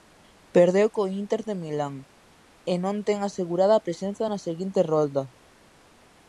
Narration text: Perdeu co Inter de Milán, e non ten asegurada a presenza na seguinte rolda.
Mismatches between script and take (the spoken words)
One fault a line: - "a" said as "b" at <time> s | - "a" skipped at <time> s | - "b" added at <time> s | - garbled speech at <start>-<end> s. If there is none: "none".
none